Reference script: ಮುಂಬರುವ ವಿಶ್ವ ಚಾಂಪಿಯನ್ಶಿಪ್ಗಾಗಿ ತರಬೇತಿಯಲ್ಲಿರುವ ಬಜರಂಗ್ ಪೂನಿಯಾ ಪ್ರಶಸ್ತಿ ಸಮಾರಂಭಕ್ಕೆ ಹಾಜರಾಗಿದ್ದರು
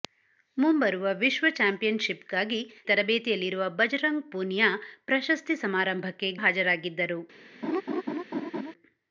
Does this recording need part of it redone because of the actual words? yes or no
no